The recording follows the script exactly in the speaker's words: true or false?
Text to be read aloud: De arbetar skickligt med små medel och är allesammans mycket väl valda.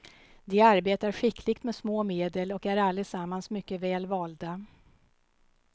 true